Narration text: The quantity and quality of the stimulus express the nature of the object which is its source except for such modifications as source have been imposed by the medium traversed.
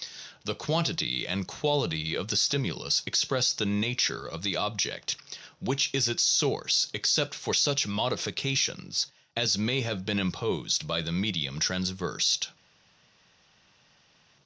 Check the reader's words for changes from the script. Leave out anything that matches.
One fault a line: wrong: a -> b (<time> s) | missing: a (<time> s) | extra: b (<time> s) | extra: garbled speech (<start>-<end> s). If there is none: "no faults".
wrong: source -> may (9.6 s)